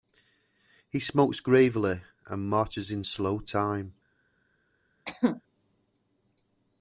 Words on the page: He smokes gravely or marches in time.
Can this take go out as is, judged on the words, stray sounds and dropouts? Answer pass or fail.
fail